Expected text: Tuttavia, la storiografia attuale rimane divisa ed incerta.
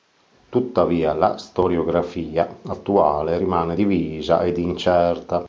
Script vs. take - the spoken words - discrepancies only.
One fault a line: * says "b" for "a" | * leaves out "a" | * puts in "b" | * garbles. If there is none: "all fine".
all fine